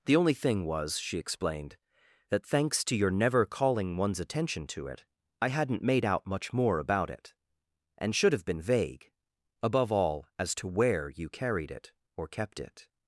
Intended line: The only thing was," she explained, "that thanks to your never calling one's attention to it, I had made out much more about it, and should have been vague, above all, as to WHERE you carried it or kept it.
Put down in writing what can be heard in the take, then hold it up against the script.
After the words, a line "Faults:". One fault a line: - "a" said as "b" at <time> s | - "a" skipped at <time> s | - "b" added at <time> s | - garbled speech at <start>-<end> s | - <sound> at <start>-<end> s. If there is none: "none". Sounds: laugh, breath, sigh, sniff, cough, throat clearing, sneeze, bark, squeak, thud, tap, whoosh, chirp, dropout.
The only thing was," she explained, "that thanks to your never calling one's attention to it, I hadn't made out much more about it, and should have been vague, above all, as to WHERE you carried it or kept it.
Faults:
- "had" said as "hadn't" at 5.5 s